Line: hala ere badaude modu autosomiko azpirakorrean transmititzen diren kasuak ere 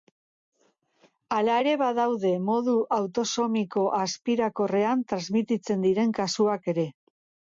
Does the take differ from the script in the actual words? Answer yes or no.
no